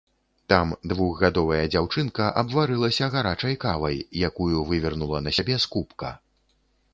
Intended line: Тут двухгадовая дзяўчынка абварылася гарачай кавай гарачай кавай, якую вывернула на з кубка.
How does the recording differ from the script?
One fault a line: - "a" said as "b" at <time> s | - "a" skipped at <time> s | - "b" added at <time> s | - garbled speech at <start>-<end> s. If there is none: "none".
- "Тут" said as "Там" at 0.5 s
- "гарачай кавай" skipped at 4.0 s
- "сябе" added at 5.4 s